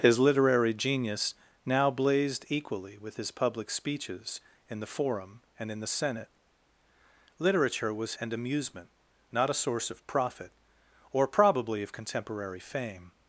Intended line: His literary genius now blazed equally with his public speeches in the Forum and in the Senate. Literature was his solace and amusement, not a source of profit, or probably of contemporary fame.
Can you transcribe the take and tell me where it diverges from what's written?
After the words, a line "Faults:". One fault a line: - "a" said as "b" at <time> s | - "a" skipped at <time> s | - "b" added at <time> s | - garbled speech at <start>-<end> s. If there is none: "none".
His literary genius now blazed equally with his public speeches in the Forum and in the Senate. Literature was and amusement, not a source of profit, or probably of contemporary fame.
Faults:
- "his solace" skipped at 8.2 s